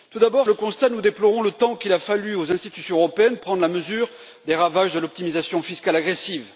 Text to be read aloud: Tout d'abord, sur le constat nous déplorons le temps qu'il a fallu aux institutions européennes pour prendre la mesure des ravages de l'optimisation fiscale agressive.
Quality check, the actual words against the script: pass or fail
fail